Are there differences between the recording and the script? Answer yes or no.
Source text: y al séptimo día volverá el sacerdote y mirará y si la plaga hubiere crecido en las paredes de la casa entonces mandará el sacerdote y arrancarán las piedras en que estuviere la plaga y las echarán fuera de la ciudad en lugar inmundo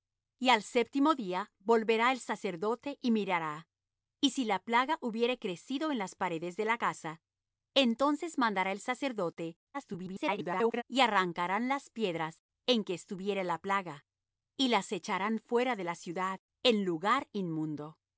yes